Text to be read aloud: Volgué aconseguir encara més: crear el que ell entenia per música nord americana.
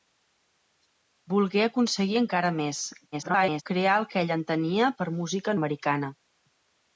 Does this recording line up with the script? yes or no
no